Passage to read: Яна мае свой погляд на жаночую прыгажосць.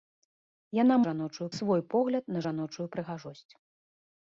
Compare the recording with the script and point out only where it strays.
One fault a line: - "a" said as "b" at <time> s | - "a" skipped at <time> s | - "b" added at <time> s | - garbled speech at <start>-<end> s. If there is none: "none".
- "мае" said as "жаночую" at 1.1 s